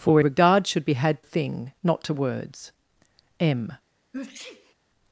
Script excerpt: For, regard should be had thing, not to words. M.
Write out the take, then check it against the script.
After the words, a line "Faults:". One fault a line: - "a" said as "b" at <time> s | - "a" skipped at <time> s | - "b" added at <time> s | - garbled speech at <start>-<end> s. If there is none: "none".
For, regard should be had thing, not to words. M.
Faults:
none